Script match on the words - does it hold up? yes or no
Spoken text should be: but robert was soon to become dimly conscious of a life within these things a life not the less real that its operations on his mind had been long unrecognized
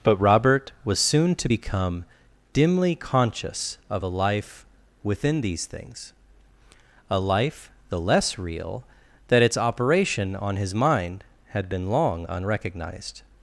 no